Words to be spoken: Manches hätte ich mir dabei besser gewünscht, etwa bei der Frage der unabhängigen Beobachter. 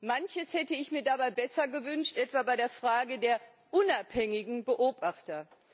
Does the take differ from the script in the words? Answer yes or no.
no